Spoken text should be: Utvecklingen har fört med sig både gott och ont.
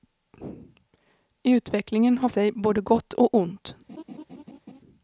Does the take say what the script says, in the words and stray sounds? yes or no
no